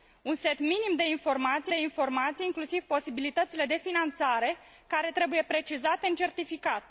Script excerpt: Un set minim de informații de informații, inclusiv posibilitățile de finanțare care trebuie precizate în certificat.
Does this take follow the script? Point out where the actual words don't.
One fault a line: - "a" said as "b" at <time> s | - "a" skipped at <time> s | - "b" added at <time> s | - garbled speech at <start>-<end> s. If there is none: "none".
none